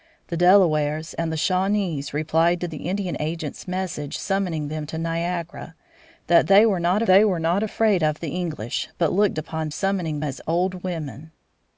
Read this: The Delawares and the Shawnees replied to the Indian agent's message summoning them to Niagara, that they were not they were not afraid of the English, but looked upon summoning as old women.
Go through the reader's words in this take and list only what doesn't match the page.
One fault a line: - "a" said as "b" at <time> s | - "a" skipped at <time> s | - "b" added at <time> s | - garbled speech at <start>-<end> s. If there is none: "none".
none